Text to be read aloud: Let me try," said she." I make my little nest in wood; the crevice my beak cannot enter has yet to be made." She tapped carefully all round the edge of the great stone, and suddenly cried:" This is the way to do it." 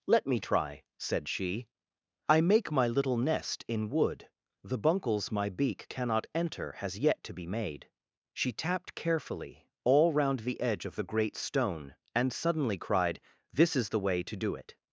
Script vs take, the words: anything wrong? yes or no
yes